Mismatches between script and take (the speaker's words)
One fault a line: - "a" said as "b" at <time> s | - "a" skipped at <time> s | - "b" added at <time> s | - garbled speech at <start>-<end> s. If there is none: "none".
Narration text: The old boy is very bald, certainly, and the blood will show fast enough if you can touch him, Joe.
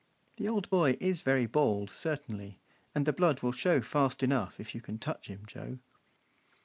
none